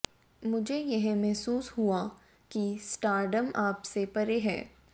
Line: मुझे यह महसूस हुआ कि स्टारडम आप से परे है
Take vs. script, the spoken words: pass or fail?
pass